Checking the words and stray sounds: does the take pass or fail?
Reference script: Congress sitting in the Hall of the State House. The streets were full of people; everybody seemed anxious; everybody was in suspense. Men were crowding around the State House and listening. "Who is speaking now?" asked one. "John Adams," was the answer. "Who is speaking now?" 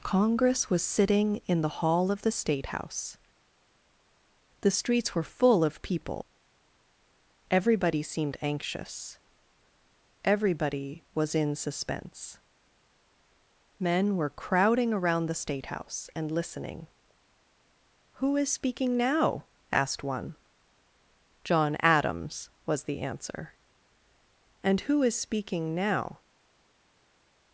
fail